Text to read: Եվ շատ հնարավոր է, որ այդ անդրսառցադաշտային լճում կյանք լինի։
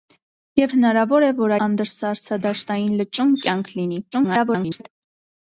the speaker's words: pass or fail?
fail